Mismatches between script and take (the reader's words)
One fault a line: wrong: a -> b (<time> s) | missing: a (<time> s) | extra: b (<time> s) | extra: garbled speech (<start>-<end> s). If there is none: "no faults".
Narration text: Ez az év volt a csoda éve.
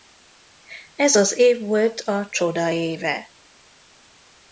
no faults